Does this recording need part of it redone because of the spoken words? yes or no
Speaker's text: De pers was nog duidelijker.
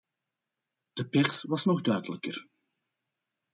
no